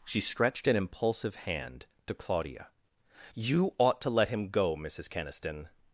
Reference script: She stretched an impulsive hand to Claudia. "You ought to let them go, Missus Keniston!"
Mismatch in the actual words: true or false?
true